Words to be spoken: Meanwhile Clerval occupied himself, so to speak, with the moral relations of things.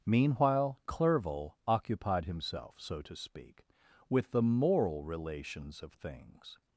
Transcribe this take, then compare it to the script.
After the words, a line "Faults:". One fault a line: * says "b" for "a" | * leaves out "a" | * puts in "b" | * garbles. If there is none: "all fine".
Meanwhile Clerval occupied himself, so to speak, with the moral relations of things.
Faults:
all fine